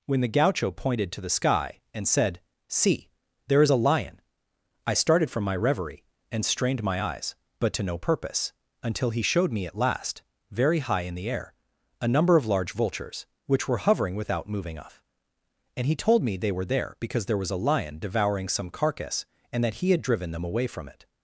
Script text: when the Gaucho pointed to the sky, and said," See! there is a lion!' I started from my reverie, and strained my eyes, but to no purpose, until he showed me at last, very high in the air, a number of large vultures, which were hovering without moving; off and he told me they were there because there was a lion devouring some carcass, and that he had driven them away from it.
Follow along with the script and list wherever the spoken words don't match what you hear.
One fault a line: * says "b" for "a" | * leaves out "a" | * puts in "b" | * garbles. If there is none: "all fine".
all fine